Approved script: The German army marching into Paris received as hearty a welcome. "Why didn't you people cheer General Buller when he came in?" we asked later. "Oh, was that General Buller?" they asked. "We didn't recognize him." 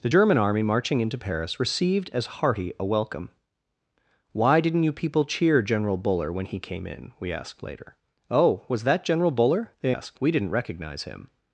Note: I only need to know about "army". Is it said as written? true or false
true